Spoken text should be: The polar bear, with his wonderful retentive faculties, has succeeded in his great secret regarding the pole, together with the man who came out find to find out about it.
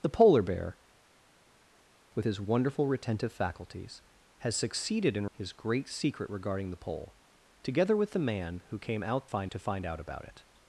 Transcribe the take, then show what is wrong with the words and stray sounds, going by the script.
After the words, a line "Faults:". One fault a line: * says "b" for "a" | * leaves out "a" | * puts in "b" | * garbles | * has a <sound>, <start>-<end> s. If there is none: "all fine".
The polar bear, with his wonderful retentive faculties, has succeeded in his great secret regarding the pole, together with the man who came out find to find out about it.
Faults:
all fine